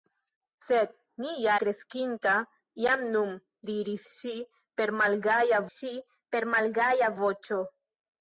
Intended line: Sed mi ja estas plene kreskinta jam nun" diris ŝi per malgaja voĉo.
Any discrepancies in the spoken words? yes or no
yes